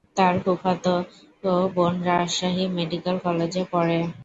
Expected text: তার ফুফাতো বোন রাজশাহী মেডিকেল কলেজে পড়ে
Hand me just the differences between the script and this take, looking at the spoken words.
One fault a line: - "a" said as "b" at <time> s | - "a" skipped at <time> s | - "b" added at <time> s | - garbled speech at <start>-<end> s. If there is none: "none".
none